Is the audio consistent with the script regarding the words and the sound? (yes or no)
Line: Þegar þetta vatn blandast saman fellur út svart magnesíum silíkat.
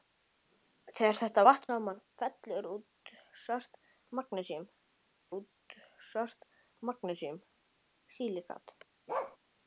no